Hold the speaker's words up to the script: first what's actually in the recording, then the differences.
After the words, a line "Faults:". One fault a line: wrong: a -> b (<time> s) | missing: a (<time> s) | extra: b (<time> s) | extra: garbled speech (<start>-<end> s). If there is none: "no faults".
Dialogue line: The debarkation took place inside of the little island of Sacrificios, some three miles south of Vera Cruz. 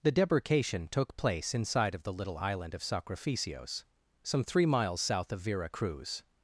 The debarkation took place inside of the little island of Sacrificios, some three miles south of Vera Cruz.
Faults:
no faults